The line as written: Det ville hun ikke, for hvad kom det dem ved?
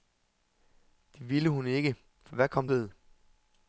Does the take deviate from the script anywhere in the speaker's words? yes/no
yes